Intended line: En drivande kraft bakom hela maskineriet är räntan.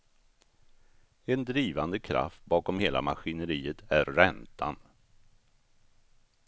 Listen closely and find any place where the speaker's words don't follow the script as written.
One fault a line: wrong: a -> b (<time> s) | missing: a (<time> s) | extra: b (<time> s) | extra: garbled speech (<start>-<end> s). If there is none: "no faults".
no faults